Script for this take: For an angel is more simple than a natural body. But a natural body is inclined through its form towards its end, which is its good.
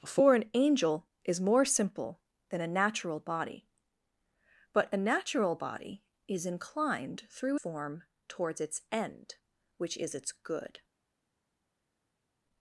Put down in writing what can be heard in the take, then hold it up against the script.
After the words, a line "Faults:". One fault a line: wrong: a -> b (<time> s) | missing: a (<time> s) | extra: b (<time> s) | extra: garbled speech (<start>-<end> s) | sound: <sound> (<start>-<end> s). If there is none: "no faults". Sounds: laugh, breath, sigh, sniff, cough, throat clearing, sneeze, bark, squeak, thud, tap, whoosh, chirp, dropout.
For an angel is more simple than a natural body. But a natural body is inclined through form towards its end, which is its good.
Faults:
missing: its (7.6 s)